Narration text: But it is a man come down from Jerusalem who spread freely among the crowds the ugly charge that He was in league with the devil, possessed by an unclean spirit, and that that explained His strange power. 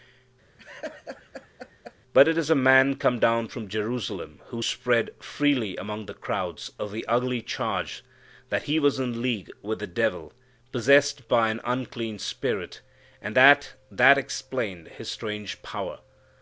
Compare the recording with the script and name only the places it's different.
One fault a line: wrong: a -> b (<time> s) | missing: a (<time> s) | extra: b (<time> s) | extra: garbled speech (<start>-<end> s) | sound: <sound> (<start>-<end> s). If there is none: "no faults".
sound: laugh (0.6-1.9 s)